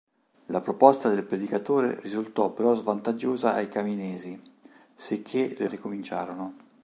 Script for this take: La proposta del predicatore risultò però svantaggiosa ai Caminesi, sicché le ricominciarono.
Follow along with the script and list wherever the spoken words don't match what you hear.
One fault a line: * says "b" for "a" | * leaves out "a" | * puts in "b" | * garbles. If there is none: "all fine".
all fine